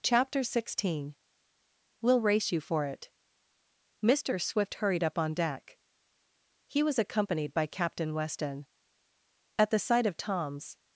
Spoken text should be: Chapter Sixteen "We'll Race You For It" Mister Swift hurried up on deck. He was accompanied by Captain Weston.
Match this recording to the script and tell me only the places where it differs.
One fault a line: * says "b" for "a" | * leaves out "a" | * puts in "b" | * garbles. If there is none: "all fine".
* puts in "At the sight of Tom's"